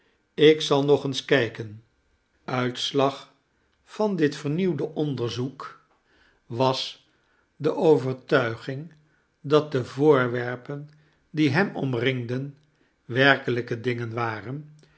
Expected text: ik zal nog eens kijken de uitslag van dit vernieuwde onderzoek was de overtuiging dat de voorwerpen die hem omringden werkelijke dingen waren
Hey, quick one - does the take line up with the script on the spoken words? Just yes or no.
no